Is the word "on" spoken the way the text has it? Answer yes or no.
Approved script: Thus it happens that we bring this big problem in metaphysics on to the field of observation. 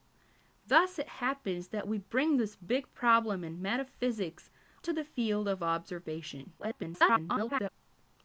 no